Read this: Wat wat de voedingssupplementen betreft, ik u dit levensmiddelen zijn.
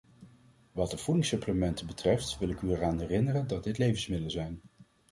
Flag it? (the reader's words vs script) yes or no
yes